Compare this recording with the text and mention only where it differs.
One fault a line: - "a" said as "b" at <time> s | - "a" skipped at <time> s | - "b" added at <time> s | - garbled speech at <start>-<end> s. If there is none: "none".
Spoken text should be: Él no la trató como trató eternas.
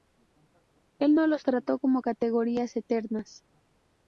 - "la" said as "los" at 1.3 s
- "trató" said as "categorías" at 2.0 s